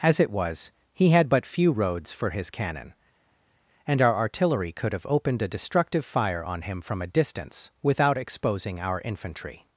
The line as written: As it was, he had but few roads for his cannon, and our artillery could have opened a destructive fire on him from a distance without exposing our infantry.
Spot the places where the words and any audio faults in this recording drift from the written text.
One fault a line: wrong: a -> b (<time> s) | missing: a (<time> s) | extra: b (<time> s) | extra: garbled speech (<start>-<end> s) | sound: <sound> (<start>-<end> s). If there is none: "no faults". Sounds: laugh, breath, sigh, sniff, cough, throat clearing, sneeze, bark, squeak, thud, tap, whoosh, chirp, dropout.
no faults